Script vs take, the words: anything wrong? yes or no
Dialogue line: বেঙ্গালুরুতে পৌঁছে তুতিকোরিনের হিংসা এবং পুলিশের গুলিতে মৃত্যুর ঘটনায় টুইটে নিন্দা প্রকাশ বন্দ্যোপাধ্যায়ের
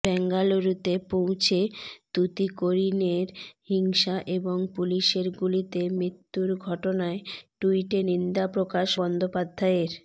no